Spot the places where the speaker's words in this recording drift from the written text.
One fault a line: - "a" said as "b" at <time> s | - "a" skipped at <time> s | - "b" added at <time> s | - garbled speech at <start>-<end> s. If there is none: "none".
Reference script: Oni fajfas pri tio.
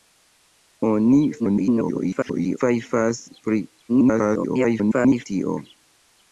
- garbled speech at 1.4-2.6 s
- garbled speech at 3.9-5.3 s